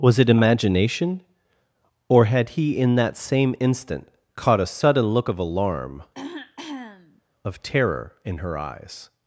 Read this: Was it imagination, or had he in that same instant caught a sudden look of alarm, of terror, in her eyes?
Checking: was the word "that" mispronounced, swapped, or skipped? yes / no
no